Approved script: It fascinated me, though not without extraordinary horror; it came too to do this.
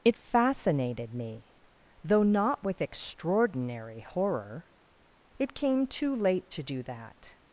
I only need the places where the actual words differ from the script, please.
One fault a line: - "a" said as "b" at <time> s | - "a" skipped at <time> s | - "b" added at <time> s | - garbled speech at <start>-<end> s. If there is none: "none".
- "without" said as "with" at 2.6 s
- "late" added at 6.2 s
- "this" said as "that" at 6.8 s